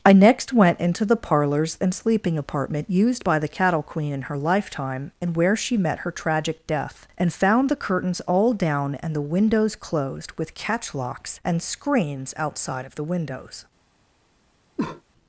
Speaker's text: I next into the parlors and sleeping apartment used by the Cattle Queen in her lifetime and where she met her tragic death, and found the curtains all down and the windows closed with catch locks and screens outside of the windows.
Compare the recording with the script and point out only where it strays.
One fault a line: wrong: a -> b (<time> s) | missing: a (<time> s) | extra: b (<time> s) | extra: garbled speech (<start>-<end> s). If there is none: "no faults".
extra: went (0.5 s)